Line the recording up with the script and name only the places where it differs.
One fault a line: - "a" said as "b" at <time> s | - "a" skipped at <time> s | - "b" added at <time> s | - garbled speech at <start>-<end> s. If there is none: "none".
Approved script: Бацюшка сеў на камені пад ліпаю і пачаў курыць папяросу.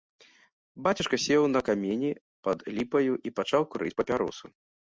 none